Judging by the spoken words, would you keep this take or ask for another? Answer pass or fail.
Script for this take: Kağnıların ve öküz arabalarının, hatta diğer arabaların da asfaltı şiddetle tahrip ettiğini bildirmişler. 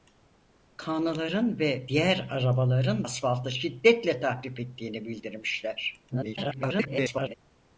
fail